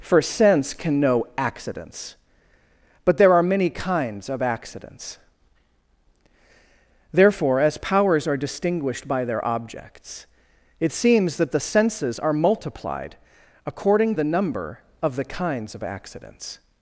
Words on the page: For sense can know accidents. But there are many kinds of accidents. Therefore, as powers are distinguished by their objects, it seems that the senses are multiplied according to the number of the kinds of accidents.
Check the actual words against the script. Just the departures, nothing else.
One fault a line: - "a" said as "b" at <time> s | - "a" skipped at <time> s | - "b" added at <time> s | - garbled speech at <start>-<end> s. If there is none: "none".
- "to" skipped at 14.2 s